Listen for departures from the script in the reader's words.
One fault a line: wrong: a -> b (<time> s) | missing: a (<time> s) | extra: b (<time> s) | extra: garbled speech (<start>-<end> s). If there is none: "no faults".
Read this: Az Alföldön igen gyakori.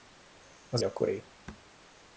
missing: Alföldön igen (0.8 s)